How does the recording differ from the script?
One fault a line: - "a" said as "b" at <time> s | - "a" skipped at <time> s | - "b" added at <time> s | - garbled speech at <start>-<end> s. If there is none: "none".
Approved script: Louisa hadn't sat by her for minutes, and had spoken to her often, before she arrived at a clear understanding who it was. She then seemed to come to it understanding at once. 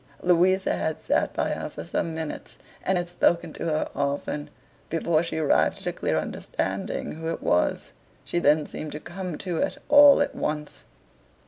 - "hadn't" said as "had" at 0.8 s
- "some" added at 1.8 s
- "understanding" said as "all" at 9.9 s